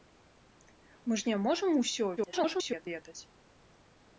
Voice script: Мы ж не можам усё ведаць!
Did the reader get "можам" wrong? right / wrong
right